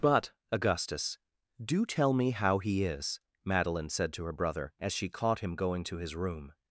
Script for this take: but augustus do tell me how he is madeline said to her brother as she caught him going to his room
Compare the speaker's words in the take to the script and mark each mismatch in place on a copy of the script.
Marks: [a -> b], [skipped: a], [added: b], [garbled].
but augustus do tell me how he is madeline said to her brother as she caught him going to his room